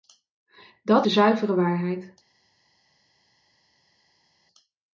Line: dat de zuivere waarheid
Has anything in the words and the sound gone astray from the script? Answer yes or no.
no